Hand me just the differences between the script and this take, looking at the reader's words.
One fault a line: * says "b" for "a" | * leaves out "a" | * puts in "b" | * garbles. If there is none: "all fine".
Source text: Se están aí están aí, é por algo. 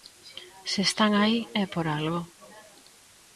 * leaves out "están aí"